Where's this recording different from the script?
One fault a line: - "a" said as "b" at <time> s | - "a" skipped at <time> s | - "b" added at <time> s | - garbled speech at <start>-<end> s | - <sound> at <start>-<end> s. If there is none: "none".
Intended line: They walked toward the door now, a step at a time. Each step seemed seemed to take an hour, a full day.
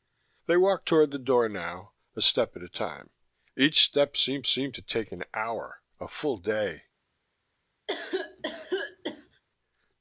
- cough at 7.9-9.4 s